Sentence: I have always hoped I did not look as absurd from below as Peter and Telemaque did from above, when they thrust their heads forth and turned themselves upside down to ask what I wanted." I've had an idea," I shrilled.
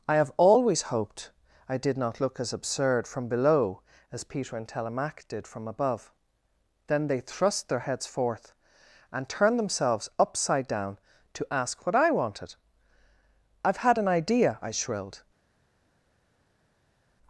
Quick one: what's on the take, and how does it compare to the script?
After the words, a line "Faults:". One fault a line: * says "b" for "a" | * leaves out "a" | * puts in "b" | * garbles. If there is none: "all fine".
I have always hoped I did not look as absurd from below as Peter and Telemaque did from above, then they thrust their heads forth and turned themselves upside down to ask what I wanted." I've had an idea," I shrilled.
Faults:
* says "then" for "when"